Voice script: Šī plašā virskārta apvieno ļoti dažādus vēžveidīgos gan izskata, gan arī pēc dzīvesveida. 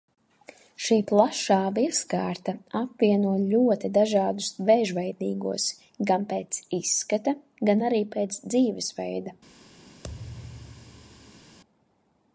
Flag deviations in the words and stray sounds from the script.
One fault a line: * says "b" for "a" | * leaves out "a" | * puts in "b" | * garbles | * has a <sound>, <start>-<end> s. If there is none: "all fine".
* puts in "pēc"
* has a thud, 10.0-11.6 s